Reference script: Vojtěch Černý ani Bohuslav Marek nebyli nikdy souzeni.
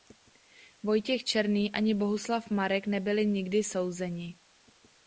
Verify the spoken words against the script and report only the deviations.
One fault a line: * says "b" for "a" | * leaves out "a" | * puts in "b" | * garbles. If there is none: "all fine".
all fine